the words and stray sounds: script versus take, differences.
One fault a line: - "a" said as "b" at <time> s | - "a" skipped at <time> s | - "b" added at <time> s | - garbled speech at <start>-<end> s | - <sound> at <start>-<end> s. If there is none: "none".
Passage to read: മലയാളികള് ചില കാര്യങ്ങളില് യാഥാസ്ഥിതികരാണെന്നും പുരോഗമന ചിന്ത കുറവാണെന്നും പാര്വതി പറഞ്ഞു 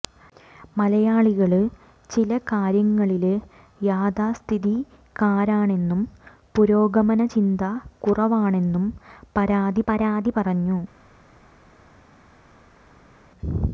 - "പാര്വതി" added at 9.9 s